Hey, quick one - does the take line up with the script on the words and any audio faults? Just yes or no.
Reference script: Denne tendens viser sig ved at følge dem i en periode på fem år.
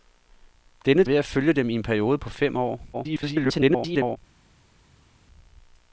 no